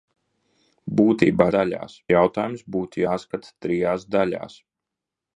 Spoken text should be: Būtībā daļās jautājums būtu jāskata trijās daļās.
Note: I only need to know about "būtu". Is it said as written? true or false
true